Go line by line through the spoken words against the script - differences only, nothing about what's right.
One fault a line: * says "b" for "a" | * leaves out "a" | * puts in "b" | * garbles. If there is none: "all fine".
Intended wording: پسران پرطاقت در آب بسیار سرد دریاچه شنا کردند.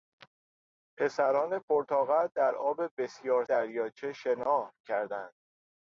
* leaves out "سرد"